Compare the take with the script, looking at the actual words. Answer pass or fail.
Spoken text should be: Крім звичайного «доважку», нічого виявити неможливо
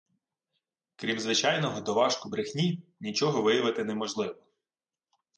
fail